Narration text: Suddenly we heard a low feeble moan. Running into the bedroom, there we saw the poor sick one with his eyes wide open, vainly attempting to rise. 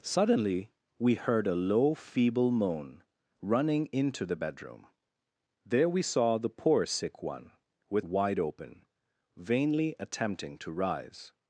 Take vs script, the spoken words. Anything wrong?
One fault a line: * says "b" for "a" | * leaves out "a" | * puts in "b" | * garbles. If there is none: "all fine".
* leaves out "his eyes"